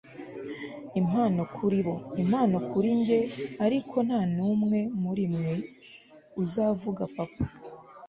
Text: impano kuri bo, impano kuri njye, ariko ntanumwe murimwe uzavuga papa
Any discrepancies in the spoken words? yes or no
no